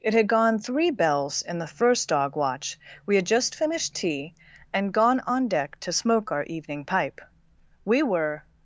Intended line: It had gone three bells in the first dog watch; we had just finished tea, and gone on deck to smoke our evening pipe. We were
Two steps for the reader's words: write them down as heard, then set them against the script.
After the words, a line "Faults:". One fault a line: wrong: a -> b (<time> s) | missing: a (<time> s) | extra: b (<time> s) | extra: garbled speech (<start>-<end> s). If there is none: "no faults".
It had gone three bells in the first dog watch; we had just finished tea, and gone on deck to smoke our evening pipe. We were
Faults:
no faults